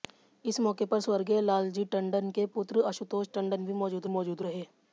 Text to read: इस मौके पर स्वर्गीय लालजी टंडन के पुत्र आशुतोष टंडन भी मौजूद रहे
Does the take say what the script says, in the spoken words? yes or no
no